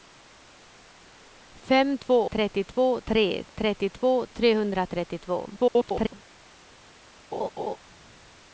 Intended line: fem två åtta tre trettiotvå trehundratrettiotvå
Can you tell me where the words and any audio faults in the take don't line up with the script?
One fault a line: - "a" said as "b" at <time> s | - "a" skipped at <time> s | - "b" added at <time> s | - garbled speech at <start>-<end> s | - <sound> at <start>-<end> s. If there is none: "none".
- "åtta" said as "trettiotvå" at 2.3 s
- garbled speech at 5.6-6.1 s
- laugh at 7.3-7.8 s